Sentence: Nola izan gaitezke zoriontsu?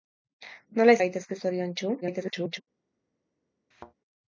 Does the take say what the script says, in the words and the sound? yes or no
no